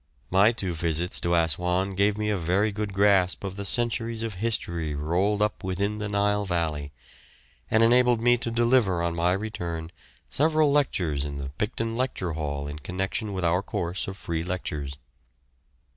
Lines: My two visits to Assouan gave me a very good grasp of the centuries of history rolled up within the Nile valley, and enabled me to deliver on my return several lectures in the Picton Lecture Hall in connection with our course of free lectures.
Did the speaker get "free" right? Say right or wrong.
right